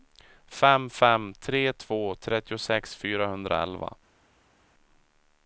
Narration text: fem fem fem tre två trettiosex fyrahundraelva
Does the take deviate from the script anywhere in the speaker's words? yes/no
yes